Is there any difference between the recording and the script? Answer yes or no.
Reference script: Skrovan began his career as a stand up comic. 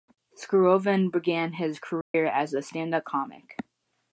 no